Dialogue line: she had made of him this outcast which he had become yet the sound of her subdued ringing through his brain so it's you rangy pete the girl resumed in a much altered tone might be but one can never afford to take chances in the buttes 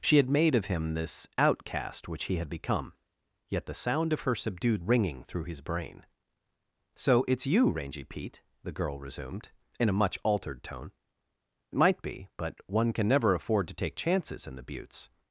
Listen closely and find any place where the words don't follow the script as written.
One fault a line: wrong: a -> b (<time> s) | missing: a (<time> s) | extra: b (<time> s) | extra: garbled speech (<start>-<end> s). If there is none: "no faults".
no faults